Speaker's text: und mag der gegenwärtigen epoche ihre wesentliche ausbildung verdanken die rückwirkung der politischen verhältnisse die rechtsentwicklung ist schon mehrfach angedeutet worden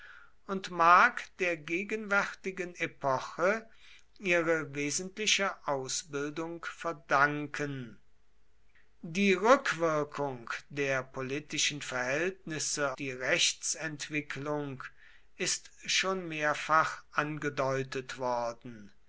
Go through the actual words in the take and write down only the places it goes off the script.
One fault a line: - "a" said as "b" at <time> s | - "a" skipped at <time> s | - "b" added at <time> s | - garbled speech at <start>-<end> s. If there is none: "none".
none